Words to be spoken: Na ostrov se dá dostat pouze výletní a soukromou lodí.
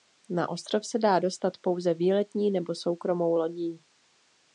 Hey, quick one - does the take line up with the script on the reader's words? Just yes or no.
no